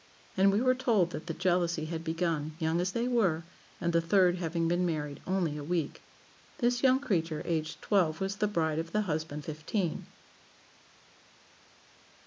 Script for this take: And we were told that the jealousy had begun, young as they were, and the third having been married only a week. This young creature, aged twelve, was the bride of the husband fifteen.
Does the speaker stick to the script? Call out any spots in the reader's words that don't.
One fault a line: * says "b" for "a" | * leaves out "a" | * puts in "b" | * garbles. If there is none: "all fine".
all fine